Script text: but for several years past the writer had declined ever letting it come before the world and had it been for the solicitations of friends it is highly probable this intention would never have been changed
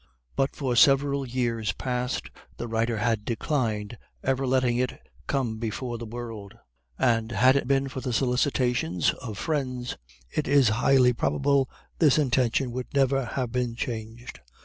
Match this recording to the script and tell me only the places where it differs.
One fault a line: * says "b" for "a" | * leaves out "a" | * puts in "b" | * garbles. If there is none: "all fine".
all fine